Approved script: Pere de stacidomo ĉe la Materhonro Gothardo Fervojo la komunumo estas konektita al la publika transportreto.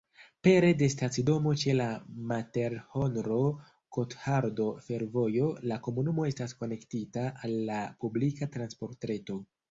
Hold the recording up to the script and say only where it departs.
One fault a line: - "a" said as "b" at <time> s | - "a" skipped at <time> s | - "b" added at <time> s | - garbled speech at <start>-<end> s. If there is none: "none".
none